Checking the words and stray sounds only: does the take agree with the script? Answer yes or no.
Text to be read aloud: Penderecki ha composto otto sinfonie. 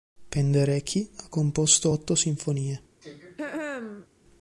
no